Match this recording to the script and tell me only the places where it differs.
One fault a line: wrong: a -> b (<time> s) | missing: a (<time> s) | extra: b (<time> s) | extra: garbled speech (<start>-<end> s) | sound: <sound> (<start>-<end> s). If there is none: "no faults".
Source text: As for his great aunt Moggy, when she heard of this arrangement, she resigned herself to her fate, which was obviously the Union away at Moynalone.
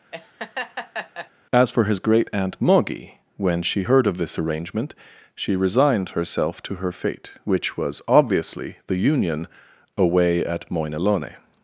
sound: laugh (0.1-1.3 s)